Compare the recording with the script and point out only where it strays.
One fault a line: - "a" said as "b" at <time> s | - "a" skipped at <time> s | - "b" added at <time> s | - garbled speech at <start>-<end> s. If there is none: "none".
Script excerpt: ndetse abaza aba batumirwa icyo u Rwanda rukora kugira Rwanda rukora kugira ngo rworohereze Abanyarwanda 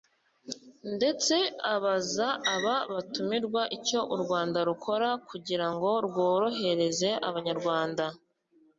- "Rwanda rukora kugira" skipped at 5.7 s